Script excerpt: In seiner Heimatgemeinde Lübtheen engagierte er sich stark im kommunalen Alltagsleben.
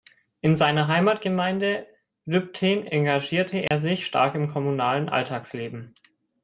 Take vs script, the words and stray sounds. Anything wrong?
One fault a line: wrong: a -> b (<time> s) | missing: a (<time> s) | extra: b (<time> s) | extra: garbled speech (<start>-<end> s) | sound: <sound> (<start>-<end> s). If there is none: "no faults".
sound: dropout (3.7-3.7 s)